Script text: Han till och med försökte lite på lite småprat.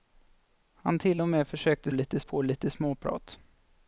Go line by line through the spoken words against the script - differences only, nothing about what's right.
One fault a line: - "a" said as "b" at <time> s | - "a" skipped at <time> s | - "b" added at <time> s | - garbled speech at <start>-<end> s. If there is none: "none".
none